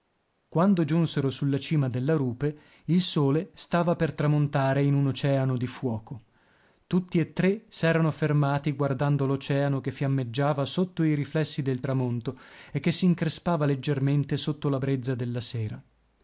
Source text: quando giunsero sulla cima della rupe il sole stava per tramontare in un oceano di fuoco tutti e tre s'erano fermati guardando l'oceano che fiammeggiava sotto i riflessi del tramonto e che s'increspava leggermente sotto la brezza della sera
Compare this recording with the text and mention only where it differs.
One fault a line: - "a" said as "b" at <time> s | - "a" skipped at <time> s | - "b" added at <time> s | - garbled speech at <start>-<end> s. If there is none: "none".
none